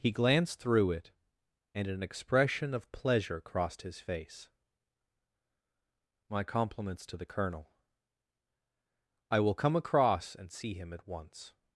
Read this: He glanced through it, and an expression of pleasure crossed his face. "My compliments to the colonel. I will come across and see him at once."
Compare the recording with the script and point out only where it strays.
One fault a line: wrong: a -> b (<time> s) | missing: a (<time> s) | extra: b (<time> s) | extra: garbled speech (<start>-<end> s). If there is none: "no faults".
no faults